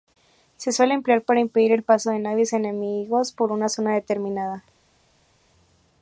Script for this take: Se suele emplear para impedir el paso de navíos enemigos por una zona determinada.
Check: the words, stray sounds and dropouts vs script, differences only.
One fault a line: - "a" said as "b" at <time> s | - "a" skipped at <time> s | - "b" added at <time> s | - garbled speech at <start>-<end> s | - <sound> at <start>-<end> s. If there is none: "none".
none